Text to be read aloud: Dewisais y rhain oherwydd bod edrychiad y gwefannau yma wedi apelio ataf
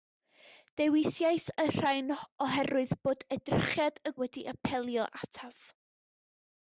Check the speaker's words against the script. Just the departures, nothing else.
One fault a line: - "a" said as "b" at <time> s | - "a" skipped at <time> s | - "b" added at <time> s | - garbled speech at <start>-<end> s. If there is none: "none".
- "gwefannau yma" skipped at 4.2 s